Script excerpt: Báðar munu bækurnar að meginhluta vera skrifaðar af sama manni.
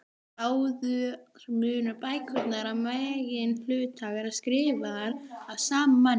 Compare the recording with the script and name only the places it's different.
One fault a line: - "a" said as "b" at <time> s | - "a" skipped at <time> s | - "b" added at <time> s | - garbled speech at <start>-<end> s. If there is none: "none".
none